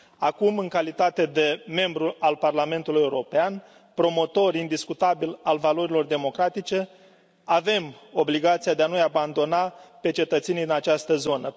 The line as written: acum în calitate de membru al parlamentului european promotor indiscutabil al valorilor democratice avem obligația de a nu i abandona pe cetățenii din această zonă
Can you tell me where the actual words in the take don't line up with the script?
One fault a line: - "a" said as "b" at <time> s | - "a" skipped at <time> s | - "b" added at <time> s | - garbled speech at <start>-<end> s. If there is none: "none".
none